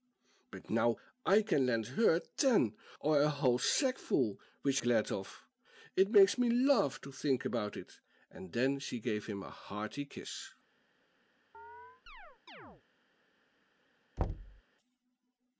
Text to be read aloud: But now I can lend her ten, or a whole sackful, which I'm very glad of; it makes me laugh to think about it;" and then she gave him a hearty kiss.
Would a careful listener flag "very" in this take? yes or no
yes